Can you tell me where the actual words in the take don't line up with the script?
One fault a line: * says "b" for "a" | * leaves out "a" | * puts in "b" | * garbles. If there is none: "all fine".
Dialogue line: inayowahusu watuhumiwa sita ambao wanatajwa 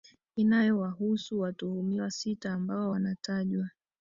all fine